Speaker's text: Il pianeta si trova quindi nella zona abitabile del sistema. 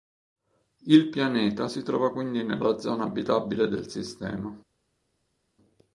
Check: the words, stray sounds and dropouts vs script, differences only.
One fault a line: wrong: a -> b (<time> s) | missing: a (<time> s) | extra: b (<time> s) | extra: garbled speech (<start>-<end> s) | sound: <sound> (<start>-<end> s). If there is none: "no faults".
no faults